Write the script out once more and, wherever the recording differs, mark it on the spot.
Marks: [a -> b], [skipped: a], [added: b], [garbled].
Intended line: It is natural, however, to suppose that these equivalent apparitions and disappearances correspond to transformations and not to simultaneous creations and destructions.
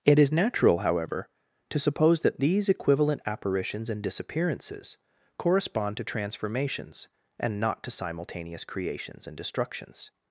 It is natural, however, to suppose that these equivalent apparitions and disappearances correspond to transformations and not to simultaneous creations and destructions.